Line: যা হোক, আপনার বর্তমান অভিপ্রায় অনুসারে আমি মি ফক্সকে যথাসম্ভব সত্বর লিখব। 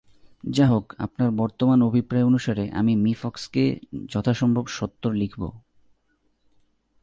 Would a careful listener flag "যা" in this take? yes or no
no